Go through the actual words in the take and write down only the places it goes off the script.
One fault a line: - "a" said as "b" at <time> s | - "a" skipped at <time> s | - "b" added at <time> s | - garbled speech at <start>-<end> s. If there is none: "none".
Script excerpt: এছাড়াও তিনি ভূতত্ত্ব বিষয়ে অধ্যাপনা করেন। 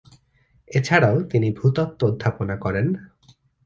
- "বিষয়ে" skipped at 2.0 s